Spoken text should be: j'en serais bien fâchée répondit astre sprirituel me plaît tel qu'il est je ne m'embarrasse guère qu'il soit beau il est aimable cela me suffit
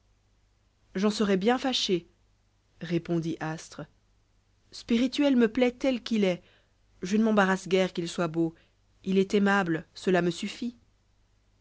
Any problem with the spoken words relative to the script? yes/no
no